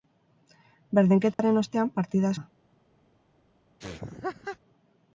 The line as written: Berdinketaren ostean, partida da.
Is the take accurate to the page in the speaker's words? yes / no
yes